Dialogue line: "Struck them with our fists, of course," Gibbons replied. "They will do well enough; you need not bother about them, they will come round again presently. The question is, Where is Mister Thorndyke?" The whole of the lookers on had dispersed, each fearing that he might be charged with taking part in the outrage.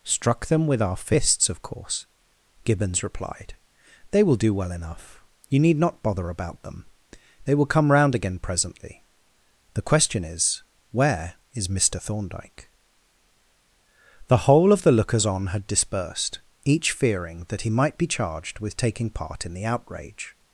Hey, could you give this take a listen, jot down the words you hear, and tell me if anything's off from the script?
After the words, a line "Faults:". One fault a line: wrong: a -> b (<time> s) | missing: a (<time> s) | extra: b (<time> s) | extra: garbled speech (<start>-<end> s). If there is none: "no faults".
"Struck them with our fists, of course," Gibbons replied. "They will do well enough; you need not bother about them, they will come round again presently. The question is, Where is Mister Thorndyke?" The whole of the lookers on had dispersed, each fearing that he might be charged with taking part in the outrage.
Faults:
no faults